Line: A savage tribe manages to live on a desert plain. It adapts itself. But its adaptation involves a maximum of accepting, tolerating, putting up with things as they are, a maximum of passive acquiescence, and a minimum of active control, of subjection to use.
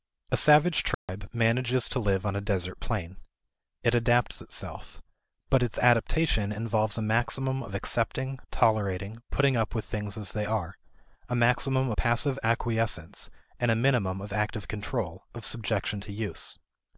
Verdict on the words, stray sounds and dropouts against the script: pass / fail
fail